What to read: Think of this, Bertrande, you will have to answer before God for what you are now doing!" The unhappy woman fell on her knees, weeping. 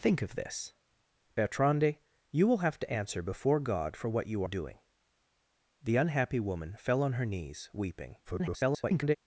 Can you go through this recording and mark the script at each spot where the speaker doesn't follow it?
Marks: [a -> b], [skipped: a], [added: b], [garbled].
Think of this, Bertrande, you will have to answer before God for what you [skipped: are now] doing!" The unhappy woman fell on her knees, weeping. [garbled]